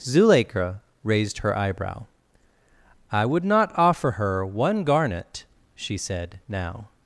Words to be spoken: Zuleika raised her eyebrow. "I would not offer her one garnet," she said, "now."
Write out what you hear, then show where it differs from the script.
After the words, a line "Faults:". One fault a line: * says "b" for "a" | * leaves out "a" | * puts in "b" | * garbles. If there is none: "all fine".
Zuleika raised her eyebrow. "I would not offer her one garnet," she said, "now."
Faults:
all fine